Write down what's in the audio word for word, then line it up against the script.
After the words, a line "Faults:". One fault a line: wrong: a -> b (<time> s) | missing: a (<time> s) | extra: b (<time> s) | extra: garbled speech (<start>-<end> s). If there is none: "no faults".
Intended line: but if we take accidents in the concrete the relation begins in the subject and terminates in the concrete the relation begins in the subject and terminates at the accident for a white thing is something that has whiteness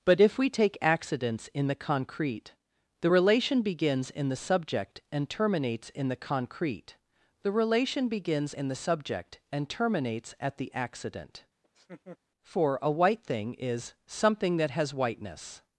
but if we take accidents in the concrete the relation begins in the subject and terminates in the concrete the relation begins in the subject and terminates at the accident for a white thing is something that has whiteness
Faults:
no faults